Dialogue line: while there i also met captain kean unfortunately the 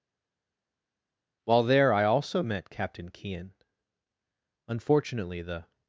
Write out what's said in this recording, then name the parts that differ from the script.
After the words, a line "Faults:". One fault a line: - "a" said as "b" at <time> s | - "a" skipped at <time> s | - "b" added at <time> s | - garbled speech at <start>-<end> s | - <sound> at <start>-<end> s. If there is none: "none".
while there i also met captain kean unfortunately the
Faults:
none